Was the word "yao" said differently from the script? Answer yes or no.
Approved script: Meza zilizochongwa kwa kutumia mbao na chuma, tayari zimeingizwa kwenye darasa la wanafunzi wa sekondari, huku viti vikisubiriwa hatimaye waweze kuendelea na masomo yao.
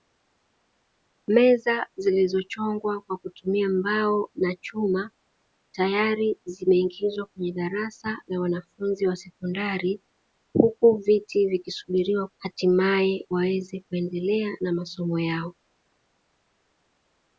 no